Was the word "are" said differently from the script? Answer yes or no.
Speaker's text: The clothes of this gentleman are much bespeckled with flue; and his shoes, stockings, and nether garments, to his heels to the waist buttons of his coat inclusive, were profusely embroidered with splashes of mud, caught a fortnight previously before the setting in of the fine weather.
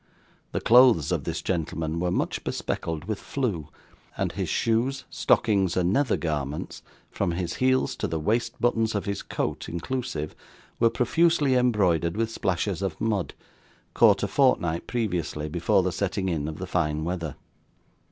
yes